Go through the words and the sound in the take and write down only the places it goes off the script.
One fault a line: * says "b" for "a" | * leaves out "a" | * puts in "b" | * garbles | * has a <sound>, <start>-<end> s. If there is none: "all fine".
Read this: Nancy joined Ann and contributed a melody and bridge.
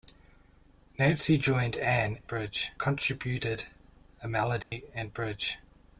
* says "bridge" for "and"
* has a dropout, 4.6-4.7 s